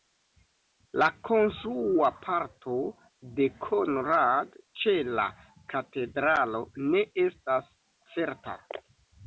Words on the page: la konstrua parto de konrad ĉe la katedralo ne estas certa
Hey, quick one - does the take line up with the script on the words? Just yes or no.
yes